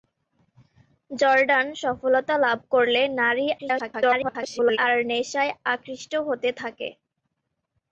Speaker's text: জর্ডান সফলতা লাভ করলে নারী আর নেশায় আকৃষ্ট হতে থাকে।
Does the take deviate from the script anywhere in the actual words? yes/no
yes